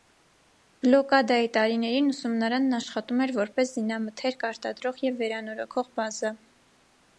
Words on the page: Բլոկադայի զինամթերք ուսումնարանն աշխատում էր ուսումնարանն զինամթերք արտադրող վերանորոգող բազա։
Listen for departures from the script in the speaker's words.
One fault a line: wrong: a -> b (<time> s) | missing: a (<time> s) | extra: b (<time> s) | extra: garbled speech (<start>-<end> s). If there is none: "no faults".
wrong: զինամթերք -> տարիներին (1.6 s)
wrong: ուսումնարանն -> որպես (3.4 s)
extra: և (5.1 s)